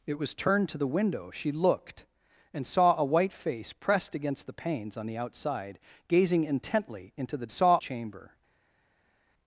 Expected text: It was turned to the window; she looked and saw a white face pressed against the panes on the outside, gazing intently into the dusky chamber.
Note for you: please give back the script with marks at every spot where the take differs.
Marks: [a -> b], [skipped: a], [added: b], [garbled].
It was turned to the window; she looked and saw a white face pressed against the panes on the outside, gazing intently into the [dusky -> saw] chamber.